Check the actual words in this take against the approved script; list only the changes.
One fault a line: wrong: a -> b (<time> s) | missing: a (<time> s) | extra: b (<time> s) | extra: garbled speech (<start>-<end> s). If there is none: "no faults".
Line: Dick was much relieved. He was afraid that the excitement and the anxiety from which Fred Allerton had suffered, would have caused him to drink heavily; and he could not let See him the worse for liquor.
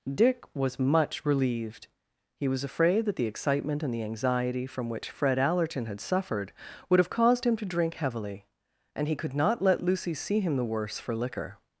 extra: Lucy (9.8 s)